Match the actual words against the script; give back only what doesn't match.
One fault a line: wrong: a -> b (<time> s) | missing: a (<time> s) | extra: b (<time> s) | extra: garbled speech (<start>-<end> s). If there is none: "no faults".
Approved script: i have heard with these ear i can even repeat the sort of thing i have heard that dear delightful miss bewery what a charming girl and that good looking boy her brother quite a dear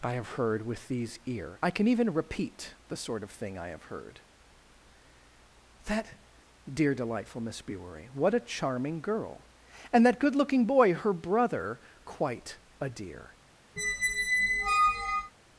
no faults